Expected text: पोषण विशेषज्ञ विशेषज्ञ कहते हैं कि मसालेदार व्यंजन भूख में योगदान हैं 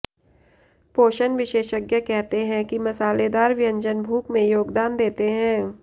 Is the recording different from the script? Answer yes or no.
yes